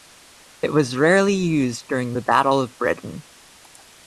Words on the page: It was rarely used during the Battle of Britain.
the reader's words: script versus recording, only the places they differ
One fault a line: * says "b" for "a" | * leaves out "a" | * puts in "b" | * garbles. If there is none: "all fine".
all fine